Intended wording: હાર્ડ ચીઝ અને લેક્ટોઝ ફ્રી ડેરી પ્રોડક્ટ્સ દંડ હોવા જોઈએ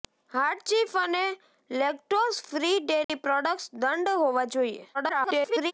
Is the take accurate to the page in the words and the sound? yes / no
no